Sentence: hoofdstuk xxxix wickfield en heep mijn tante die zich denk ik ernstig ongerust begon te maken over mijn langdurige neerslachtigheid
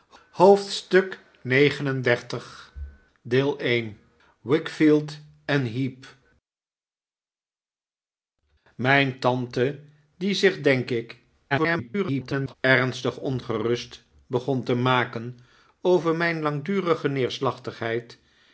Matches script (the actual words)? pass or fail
fail